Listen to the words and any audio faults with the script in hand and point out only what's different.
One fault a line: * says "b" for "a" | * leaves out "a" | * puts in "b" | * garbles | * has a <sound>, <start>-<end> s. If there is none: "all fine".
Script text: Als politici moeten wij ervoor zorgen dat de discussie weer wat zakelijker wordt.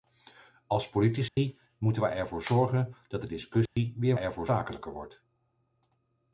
* has a dropout, 1.3-1.4 s
* has a dropout, 3.7-3.8 s
* says "ervoor" for "wat"